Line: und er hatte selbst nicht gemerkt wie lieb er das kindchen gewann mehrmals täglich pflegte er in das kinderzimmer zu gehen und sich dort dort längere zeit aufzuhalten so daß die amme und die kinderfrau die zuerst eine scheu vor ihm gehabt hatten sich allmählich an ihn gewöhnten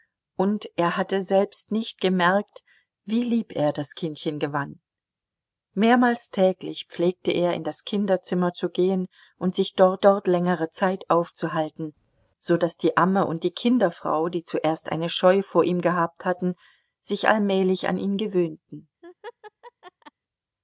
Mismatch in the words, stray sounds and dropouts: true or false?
true